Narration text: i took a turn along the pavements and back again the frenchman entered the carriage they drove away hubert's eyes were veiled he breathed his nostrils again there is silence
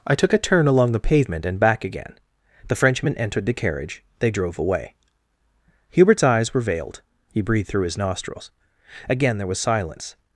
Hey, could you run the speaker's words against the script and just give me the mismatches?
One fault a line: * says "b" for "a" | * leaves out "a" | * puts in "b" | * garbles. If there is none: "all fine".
* says "pavement" for "pavements"
* puts in "through"
* says "was" for "is"